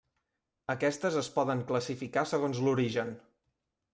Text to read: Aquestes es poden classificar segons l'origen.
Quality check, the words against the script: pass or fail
pass